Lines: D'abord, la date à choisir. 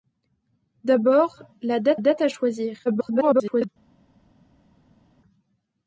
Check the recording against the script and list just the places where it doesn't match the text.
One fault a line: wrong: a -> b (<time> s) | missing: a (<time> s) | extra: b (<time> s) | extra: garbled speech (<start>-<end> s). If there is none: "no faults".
extra: date (2.0 s)
extra: garbled speech (2.9-3.7 s)